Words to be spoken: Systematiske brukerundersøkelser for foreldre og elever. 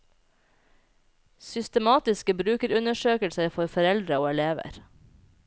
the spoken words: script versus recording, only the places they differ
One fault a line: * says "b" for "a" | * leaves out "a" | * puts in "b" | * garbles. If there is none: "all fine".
all fine